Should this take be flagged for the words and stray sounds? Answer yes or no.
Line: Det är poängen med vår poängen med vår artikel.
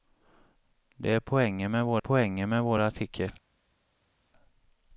no